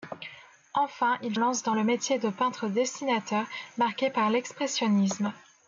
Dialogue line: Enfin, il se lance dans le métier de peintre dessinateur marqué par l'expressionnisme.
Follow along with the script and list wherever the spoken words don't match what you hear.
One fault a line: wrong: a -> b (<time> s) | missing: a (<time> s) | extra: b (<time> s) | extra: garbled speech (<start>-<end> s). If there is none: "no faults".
missing: se (1.4 s)